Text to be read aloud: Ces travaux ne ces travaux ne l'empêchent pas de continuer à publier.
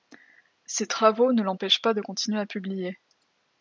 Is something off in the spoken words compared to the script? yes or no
yes